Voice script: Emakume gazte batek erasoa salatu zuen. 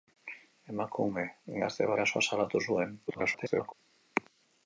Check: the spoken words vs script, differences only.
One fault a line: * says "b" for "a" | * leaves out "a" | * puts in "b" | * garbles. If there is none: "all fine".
* leaves out "batek"
* garbles